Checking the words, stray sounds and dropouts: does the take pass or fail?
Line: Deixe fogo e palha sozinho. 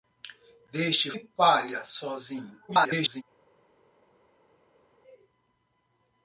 fail